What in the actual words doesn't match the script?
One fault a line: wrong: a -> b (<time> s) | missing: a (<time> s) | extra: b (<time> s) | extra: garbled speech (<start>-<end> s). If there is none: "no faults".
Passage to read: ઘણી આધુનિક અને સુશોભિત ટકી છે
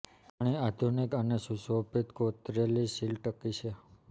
extra: કોતરેલી સીલ (2.2 s)